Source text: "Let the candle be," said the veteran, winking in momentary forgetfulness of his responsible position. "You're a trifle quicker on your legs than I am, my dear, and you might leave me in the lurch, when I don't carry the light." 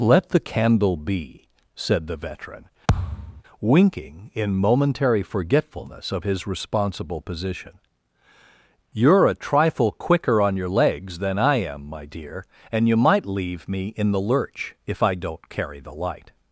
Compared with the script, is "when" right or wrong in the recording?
wrong